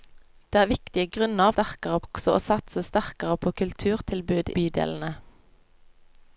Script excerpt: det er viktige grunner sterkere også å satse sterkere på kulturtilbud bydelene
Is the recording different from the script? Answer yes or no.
no